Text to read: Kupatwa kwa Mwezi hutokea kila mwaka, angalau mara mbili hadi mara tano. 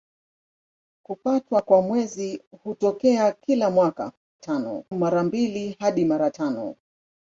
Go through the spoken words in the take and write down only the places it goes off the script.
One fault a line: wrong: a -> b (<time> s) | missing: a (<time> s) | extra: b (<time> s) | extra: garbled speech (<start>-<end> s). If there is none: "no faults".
wrong: angalau -> tano (4.4 s)